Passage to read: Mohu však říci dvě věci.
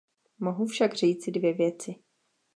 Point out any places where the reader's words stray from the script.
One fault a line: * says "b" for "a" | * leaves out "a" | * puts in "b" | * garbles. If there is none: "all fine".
all fine